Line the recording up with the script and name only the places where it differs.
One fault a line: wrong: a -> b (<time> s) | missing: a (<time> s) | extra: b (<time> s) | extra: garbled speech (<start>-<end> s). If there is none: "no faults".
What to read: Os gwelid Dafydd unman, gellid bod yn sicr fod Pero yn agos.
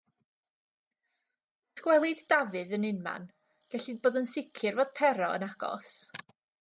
extra: yn (2.8 s)